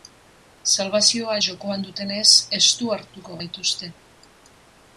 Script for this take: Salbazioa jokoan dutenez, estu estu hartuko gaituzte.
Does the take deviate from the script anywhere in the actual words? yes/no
yes